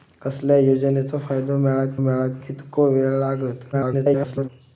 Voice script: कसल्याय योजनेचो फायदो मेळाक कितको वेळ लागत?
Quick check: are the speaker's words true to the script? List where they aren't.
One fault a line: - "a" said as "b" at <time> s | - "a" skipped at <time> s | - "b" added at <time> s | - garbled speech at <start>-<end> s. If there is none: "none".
- "मेळाक" added at 2.0 s
- garbled speech at 3.7-4.5 s